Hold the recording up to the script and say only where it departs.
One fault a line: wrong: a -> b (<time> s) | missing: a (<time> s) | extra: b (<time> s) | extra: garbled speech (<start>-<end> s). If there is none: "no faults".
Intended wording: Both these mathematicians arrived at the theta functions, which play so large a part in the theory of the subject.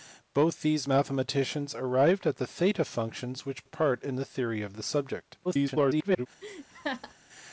missing: play so large (3.7 s)
extra: garbled speech (5.4-6.3 s)